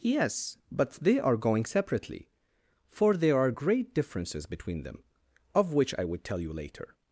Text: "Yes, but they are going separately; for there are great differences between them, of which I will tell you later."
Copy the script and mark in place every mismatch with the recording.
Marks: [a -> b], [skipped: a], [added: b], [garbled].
"Yes, but they are going separately; for there are great differences between them, of which I [will -> would] tell you later."